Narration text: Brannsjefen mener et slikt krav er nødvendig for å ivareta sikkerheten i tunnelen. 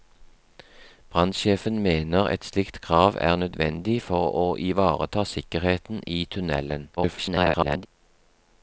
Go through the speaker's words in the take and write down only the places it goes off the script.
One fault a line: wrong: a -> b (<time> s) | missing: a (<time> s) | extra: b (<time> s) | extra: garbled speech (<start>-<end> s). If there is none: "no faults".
extra: garbled speech (7.0-7.9 s)